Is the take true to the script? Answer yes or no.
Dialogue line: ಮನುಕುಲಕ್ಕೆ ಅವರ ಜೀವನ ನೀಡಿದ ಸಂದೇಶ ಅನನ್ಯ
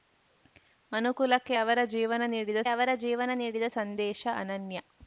no